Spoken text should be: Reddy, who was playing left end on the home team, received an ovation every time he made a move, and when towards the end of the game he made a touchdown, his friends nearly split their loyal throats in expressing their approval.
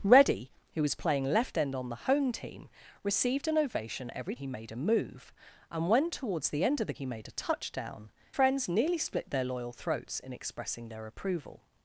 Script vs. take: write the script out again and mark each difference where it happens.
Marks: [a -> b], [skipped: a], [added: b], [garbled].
Reddy, who was playing left end on the home team, received an ovation every [skipped: time] he made a move, and when towards the end of the [skipped: game] he made a touchdown, [skipped: his] friends nearly split their loyal throats in expressing their approval.